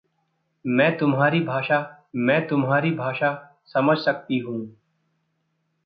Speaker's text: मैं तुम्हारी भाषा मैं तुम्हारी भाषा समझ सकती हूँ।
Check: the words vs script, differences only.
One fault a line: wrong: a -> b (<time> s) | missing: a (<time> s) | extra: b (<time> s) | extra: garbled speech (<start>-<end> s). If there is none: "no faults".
no faults